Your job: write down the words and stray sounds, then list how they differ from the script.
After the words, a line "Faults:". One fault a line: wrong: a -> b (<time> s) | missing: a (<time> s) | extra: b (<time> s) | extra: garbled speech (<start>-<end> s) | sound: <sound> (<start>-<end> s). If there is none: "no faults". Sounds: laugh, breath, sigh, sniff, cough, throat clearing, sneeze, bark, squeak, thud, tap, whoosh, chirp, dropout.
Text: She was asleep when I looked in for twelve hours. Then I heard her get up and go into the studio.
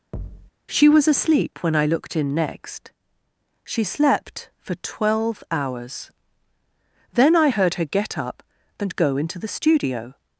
She was asleep when I looked in next. She slept for twelve hours. Then I heard her get up and go into the studio.
Faults:
sound: thud (0.1-0.5 s)
extra: next She slept (2.3 s)